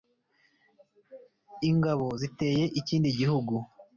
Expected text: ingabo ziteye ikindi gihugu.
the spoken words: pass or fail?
pass